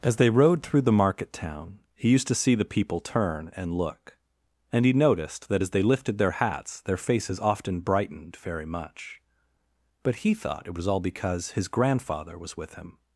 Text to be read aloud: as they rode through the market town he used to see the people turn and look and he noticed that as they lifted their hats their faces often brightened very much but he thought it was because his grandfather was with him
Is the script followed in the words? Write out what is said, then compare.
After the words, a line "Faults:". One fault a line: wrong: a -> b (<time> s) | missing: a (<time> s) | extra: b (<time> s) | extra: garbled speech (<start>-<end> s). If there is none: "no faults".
as they rode through the market town he used to see the people turn and look and he noticed that as they lifted their hats their faces often brightened very much but he thought it was all because his grandfather was with him
Faults:
extra: all (10.9 s)